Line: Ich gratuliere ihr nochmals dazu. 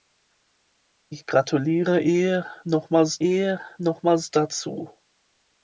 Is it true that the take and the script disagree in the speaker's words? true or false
true